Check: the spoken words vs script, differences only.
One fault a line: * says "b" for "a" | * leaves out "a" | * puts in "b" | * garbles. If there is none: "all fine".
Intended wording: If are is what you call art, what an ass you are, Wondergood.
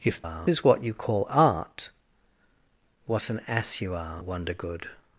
all fine